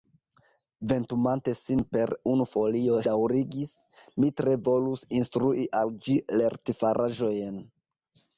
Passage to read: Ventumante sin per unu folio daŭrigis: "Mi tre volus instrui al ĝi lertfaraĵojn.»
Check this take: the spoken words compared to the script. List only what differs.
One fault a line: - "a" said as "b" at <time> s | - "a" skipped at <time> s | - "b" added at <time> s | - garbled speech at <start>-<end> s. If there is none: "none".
none